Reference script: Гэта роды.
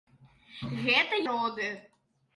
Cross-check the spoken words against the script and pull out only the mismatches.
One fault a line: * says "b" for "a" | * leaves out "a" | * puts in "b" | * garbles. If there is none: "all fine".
all fine